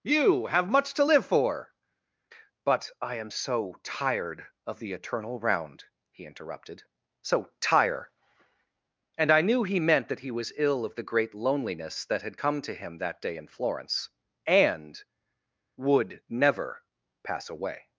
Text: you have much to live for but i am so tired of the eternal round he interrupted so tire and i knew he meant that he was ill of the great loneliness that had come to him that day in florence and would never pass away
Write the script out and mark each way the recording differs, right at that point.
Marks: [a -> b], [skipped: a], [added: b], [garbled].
you have much to live for but i am so tired of the eternal round he interrupted so tire and i knew he meant that he was ill of the great loneliness that had come to him that day in florence and would never pass away